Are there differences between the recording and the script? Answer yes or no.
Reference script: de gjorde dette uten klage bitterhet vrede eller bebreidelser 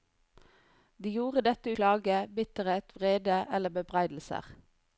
yes